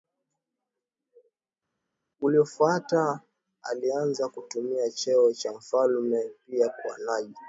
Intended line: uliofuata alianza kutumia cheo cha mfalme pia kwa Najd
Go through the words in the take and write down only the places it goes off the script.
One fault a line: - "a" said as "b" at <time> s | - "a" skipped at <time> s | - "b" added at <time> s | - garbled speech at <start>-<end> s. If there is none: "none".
none